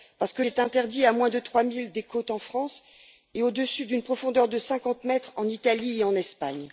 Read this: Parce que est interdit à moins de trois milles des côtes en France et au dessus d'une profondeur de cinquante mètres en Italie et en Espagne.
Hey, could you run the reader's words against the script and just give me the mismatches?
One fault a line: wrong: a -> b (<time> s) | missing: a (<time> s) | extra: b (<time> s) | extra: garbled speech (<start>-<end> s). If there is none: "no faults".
no faults